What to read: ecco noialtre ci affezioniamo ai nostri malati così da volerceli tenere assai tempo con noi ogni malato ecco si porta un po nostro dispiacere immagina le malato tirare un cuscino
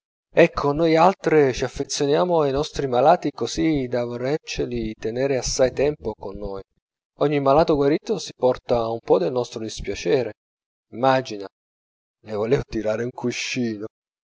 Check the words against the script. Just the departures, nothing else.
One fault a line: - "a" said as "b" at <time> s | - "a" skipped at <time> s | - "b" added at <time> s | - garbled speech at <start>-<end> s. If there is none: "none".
- "ecco" said as "guarito" at 7.8 s
- "del" added at 9.2 s
- "malato" said as "volevo" at 12.3 s